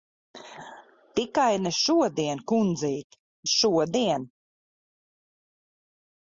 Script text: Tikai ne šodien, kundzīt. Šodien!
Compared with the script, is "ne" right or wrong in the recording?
right